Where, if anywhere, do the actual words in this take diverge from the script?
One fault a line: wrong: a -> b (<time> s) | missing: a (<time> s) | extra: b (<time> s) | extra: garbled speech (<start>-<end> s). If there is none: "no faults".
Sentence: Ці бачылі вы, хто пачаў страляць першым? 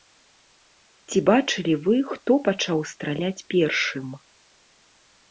no faults